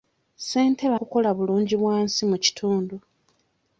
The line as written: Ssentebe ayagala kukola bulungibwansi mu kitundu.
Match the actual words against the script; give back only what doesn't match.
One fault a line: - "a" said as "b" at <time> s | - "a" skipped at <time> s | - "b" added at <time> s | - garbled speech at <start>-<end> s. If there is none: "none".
- "ayagala" skipped at 0.9 s